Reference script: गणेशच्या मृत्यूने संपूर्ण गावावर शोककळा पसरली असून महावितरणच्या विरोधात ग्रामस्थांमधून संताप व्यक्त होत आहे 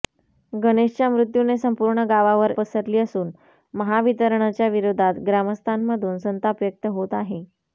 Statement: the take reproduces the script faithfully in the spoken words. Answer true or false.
false